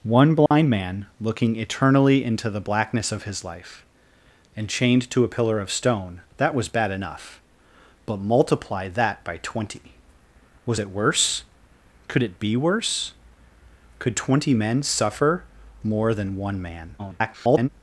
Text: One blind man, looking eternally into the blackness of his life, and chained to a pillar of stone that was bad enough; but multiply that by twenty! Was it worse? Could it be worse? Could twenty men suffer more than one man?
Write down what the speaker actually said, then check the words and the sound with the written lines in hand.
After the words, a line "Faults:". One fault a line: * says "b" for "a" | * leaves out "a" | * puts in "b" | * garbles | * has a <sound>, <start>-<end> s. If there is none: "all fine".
One blind man, looking eternally into the blackness of his life, and chained to a pillar of stone that was bad enough; but multiply that by twenty! Was it worse? Could it be worse? Could twenty men suffer more than one man? [garbled]
Faults:
* has a dropout, 0.5-0.5 s
* garbles